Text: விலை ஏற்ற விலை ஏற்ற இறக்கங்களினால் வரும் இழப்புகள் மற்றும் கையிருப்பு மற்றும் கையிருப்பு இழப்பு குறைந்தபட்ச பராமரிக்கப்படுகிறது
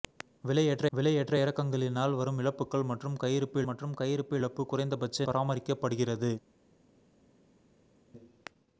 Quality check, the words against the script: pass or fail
pass